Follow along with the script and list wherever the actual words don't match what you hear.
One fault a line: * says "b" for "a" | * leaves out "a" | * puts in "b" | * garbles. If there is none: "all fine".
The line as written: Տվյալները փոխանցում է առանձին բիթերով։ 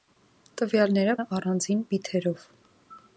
* leaves out "փոխանցում"